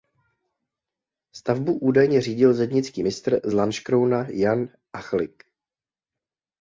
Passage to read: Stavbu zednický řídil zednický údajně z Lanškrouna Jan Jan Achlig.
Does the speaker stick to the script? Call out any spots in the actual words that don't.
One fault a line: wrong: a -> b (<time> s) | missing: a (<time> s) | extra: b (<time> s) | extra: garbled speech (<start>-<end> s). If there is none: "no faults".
wrong: zednický -> údajně (1.8 s)
wrong: údajně -> mistr (3.0 s)
missing: Jan (4.7 s)